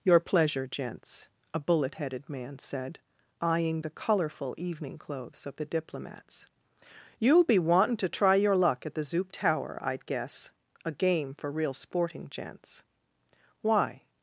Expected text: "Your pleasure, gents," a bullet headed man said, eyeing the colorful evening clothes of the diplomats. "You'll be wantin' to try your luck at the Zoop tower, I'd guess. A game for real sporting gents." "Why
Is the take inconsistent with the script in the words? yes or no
no